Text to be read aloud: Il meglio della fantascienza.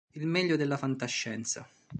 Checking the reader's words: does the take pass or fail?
pass